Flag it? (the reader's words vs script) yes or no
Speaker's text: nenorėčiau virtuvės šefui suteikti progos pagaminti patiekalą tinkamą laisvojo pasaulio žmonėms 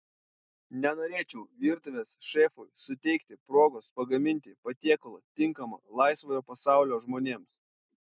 no